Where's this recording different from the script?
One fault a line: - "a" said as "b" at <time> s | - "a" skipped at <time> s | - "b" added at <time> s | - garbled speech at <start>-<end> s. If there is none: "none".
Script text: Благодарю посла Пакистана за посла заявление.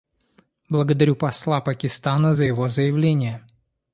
- "посла" said as "его" at 2.4 s